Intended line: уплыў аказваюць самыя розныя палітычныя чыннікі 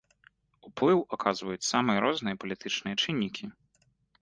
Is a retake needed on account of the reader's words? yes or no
no